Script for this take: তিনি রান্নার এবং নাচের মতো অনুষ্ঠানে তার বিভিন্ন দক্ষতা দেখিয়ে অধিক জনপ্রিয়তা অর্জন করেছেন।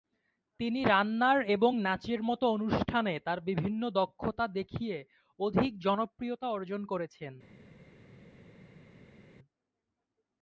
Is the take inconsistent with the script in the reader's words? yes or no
no